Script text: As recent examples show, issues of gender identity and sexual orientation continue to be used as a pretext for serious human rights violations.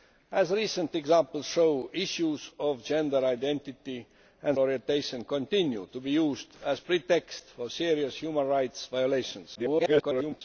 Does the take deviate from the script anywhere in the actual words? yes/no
yes